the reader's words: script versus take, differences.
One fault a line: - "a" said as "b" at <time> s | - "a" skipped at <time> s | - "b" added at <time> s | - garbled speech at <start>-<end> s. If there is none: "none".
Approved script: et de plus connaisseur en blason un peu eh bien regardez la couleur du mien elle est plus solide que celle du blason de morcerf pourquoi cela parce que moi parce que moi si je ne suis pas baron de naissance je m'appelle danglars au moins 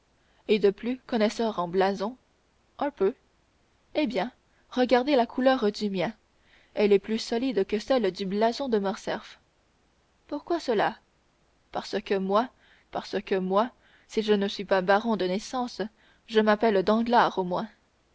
none